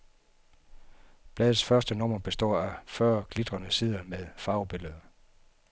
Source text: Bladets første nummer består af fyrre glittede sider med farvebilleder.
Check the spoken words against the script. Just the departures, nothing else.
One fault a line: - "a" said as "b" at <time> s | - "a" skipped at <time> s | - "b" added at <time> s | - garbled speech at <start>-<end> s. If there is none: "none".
none